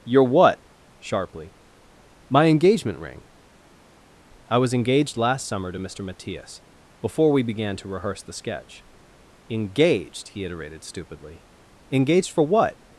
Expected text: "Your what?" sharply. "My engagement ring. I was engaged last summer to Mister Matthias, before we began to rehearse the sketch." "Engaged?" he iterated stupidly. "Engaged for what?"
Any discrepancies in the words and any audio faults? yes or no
no